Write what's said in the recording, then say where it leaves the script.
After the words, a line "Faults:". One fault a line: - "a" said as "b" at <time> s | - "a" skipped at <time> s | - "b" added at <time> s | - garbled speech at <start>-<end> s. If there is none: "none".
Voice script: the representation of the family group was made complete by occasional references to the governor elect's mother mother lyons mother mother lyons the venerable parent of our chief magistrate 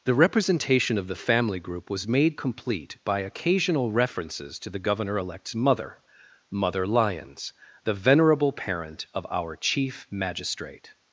the representation of the family group was made complete by occasional references to the governor elect's mother mother lyons the venerable parent of our chief magistrate
Faults:
- "mother mother lyons" skipped at 7.5 s